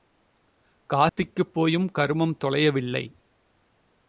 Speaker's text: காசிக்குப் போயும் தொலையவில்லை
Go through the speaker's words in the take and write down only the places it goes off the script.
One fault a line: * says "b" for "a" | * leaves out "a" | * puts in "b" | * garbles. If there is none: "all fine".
* puts in "கருமம்"